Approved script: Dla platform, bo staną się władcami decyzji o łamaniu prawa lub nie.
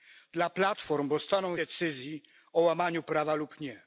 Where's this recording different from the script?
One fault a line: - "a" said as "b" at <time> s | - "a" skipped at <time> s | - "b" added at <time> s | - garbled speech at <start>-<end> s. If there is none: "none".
- "się władcami" skipped at 1.6 s